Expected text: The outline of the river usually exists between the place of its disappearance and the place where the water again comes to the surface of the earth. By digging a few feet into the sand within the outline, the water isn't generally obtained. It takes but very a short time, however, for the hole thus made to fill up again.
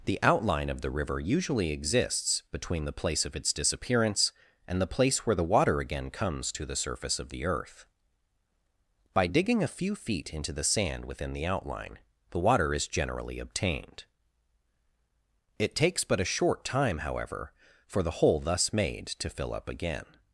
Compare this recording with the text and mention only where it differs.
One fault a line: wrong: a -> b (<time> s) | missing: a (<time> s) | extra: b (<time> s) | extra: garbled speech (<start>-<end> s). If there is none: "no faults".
wrong: isn't -> is (12.7 s)
missing: very (16.2 s)